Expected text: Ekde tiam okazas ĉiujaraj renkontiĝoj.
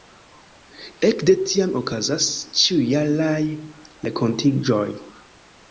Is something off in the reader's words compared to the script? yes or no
no